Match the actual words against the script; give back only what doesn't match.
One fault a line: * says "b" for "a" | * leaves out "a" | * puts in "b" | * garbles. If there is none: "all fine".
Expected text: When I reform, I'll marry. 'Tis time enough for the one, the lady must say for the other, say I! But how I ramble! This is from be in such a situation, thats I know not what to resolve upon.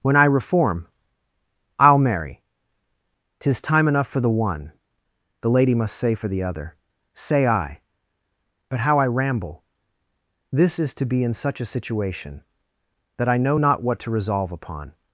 * says "to" for "from"
* says "that" for "thats"